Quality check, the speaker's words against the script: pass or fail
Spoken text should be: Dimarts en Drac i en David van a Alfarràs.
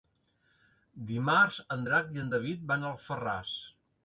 pass